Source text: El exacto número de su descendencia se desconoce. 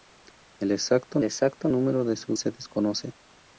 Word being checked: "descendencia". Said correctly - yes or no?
no